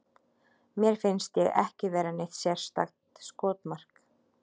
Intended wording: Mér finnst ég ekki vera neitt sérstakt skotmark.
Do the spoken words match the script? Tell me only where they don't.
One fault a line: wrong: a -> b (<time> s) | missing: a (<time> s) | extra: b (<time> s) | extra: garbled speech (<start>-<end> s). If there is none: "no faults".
no faults